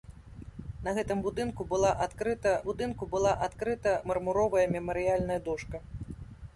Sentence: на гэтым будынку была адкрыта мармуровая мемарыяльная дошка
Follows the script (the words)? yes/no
no